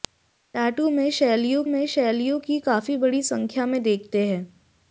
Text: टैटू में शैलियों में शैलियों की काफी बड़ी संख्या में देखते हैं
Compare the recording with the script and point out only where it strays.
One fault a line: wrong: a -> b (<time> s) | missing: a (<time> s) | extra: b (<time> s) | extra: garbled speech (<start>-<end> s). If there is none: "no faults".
no faults